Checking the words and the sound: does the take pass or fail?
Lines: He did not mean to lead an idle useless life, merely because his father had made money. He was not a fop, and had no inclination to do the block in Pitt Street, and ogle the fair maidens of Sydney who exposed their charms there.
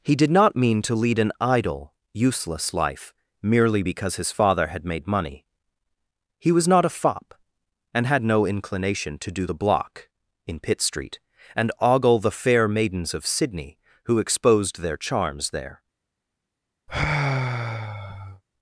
fail